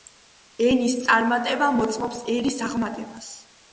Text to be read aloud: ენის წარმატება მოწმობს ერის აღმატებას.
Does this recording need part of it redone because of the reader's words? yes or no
no